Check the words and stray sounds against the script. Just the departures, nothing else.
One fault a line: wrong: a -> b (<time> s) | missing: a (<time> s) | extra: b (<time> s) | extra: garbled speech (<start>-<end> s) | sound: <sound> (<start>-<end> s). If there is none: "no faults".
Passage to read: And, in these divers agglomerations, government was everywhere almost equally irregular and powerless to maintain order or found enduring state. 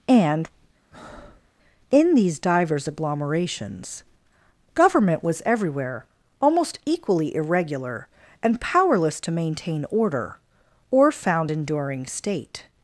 sound: breath (0.9-1.5 s)